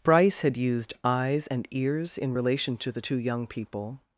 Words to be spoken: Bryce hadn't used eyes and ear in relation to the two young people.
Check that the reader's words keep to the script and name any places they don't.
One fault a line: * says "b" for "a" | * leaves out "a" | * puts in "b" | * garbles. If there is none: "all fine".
* says "had" for "hadn't"
* says "ears" for "ear"